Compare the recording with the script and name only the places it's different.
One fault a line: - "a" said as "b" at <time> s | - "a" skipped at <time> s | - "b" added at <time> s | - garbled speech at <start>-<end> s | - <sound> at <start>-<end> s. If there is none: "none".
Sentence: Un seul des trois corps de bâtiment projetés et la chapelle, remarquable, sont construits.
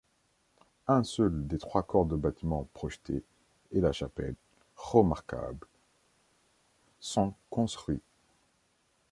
none